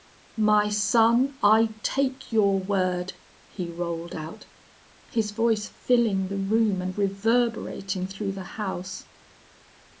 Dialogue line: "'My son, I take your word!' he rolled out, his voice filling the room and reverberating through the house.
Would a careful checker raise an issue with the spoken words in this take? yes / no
no